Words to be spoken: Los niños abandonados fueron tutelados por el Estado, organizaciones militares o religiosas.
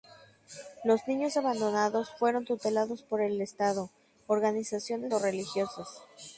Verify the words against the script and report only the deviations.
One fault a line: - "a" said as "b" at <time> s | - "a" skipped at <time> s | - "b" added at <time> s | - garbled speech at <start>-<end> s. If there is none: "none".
- "militares" skipped at 5.1 s